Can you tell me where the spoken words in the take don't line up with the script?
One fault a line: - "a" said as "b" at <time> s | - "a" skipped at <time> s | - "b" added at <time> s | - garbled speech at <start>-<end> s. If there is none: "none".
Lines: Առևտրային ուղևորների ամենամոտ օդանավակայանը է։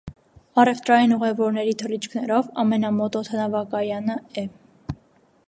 - "թռիչքներով" added at 1.8 s